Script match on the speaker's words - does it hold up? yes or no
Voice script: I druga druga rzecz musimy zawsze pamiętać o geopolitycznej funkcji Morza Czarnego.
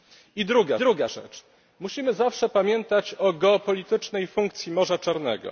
yes